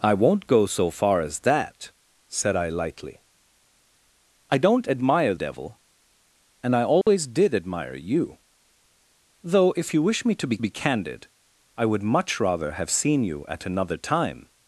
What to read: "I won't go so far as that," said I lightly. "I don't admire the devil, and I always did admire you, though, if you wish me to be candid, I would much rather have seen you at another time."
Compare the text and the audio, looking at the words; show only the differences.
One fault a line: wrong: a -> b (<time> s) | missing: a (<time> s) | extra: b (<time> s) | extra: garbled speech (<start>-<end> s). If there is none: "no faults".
missing: the (5.3 s)
extra: be (10.6 s)